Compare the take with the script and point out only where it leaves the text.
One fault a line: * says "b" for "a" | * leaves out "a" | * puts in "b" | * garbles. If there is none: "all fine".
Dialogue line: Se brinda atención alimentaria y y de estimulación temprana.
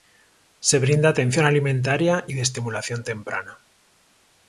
all fine